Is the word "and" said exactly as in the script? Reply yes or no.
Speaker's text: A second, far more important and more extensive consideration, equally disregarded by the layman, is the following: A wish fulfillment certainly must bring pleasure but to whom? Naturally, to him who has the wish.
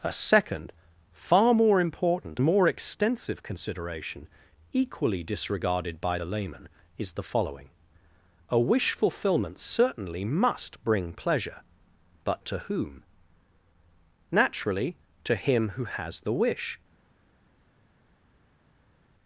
no